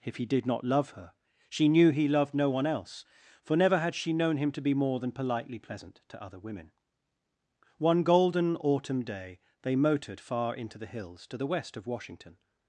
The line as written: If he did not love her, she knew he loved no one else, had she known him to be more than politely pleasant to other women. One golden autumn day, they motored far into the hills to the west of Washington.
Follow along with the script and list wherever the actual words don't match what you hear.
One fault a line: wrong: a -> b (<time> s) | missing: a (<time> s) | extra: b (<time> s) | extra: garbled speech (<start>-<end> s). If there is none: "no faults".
extra: for never (3.4 s)